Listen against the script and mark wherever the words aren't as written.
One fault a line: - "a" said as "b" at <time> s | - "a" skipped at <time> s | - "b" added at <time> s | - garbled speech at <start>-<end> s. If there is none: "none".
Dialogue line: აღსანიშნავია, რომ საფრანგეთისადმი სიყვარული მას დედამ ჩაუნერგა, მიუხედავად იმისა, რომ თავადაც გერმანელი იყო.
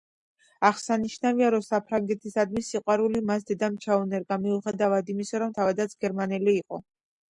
none